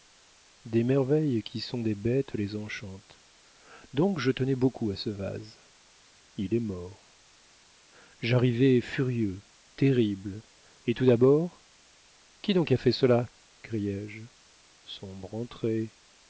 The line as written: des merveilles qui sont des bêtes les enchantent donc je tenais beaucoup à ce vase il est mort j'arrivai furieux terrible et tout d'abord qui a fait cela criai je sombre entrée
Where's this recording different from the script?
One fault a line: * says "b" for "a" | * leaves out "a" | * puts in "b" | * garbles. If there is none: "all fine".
* puts in "donc"